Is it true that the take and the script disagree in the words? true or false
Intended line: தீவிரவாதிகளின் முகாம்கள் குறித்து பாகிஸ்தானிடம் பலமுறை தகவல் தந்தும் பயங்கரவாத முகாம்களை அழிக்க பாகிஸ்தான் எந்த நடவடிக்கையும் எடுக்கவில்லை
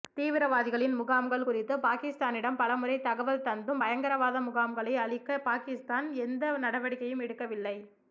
false